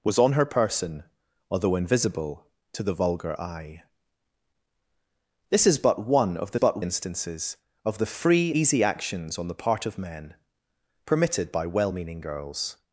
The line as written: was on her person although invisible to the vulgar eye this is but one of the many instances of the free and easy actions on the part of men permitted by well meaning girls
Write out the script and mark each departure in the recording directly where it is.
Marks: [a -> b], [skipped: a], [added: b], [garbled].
was on her person although invisible to the vulgar eye this is but one of the [many -> but] instances of the free [skipped: and] easy actions on the part of men permitted by well meaning girls